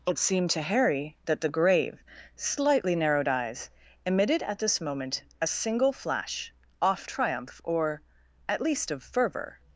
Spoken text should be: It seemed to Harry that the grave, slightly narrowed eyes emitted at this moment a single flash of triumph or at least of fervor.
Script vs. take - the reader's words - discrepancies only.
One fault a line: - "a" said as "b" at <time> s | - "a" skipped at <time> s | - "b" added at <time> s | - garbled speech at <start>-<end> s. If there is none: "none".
- "of" said as "off" at 6.8 s